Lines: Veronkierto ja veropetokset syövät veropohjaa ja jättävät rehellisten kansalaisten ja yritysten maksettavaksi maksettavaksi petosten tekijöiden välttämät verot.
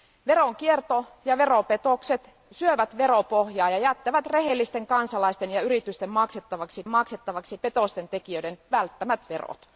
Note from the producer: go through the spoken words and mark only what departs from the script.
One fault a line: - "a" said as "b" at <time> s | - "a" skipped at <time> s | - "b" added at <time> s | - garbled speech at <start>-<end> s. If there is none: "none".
none